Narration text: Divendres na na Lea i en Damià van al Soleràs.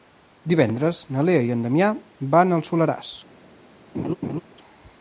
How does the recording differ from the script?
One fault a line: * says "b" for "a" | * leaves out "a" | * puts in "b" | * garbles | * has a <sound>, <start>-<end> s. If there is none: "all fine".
* leaves out "na"
* has a laugh, 3.9-4.4 s